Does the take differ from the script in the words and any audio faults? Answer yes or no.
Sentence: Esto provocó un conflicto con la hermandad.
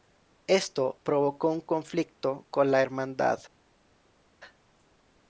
no